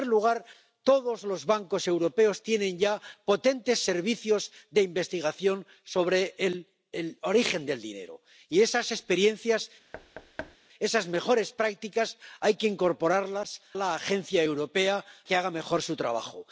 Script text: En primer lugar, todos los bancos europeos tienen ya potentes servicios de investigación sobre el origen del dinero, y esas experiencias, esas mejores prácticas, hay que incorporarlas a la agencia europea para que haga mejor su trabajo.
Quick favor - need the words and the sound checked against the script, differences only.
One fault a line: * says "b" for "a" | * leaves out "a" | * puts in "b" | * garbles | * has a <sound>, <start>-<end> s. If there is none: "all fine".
* has a thud, 9.9-10.6 s
* leaves out "a"
* leaves out "para"